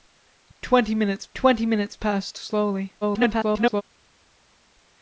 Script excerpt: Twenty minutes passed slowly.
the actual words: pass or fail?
fail